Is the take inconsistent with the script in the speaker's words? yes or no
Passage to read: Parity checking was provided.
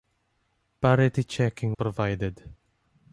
yes